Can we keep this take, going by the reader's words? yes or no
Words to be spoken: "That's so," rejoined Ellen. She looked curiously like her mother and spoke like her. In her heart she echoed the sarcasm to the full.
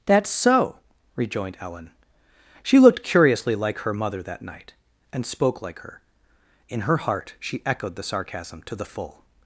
no